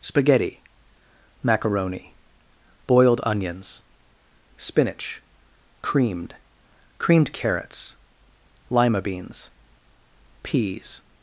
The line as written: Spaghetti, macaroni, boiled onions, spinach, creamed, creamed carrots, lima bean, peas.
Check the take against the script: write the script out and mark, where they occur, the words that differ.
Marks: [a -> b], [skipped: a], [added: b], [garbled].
Spaghetti, macaroni, boiled onions, spinach, creamed, creamed carrots, lima [bean, -> beans] peas.